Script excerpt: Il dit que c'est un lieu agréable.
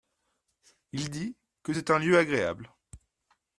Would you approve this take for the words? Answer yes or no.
yes